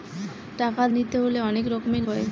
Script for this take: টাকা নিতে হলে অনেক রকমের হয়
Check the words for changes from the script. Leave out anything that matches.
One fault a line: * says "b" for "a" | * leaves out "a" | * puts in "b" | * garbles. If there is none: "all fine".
all fine